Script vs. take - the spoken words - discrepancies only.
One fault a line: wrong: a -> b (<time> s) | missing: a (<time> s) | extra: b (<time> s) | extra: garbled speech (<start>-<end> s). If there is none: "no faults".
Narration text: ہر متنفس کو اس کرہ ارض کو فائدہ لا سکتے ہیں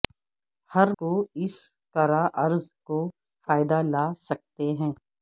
missing: متنفس (0.9 s)